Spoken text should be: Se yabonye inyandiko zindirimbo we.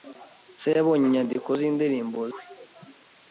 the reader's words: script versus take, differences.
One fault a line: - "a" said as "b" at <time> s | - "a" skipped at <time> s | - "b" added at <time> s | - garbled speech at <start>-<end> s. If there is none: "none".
none